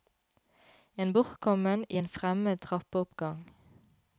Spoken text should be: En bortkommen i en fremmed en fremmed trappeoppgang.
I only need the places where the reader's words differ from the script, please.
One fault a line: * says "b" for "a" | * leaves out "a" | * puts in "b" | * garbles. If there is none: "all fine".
* leaves out "en fremmed"